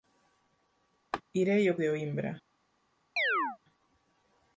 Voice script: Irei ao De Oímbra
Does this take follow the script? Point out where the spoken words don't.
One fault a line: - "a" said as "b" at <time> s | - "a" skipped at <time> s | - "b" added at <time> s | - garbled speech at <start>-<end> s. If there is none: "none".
none